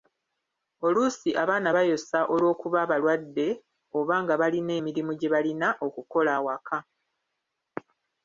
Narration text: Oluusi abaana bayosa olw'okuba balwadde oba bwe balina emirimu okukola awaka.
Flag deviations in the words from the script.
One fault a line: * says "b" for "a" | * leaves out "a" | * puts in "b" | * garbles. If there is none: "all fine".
* says "nga" for "bwe"
* puts in "gye balina"